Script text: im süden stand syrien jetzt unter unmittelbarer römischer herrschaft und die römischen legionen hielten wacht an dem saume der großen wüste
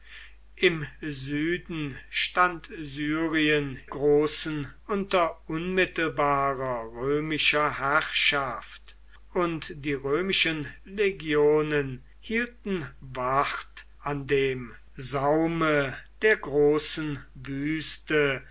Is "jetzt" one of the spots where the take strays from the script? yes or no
yes